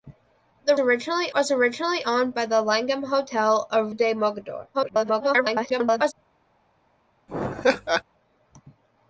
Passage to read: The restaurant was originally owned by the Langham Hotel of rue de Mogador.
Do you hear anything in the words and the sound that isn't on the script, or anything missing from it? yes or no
yes